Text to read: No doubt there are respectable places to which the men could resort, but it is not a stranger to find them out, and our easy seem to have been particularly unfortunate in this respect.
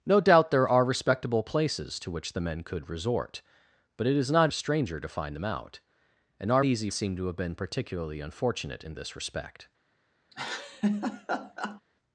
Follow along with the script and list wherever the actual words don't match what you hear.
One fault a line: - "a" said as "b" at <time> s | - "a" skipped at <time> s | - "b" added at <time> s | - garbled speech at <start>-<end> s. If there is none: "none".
none